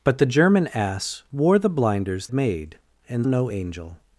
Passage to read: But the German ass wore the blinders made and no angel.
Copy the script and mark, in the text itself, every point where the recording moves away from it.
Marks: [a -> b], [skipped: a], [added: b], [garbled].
But the German ass wore the blinders made and no angel.